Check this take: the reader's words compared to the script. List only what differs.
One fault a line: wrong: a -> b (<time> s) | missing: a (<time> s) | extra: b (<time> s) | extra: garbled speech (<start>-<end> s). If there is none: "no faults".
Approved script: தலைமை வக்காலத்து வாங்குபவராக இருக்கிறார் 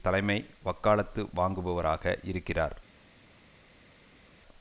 no faults